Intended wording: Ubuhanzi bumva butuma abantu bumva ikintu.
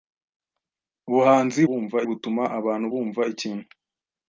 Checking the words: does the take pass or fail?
pass